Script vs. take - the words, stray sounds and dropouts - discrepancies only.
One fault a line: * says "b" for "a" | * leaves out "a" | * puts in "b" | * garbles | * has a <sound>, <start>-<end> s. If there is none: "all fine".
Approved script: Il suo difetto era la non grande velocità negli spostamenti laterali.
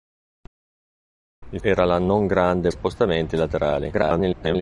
* leaves out "suo difetto"
* leaves out "velocità negli"
* garbles